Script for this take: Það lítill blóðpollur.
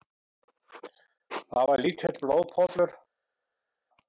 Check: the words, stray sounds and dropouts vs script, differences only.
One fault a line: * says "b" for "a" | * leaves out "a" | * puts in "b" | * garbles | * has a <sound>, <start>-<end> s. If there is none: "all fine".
* puts in "var"